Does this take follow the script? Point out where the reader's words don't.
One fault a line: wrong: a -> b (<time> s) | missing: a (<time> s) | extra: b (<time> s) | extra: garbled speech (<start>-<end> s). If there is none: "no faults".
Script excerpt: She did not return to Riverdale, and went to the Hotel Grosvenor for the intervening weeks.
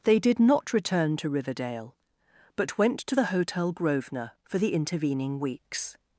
wrong: She -> They (0.0 s)
wrong: and -> but (2.5 s)